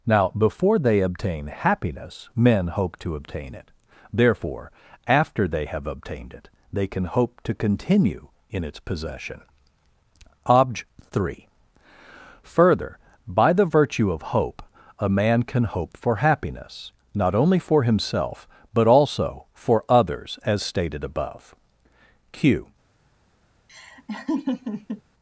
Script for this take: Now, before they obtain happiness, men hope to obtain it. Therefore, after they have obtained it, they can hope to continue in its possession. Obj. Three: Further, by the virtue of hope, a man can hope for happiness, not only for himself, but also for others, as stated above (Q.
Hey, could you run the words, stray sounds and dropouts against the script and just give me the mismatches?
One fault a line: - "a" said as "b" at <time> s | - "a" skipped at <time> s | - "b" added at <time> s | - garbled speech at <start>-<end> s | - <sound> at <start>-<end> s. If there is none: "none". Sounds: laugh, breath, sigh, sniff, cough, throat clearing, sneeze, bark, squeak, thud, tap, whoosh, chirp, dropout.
- laugh at 23.7-25.0 s